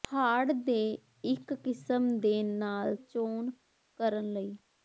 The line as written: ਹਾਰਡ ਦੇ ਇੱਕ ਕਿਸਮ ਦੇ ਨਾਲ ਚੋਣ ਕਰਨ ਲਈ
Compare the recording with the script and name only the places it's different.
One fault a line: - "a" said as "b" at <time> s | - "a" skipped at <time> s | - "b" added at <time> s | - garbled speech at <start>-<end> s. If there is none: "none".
none